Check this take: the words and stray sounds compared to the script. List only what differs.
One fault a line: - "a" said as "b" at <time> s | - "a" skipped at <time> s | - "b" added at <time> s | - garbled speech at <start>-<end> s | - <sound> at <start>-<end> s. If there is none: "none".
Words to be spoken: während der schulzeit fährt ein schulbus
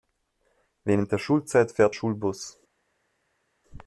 - "ein" skipped at 1.9 s